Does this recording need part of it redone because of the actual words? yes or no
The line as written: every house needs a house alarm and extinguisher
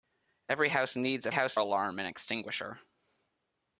no